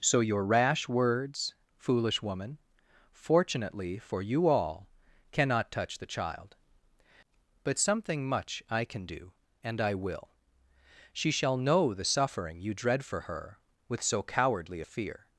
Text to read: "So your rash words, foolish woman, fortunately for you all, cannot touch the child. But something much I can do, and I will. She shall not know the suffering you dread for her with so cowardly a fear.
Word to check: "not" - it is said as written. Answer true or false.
false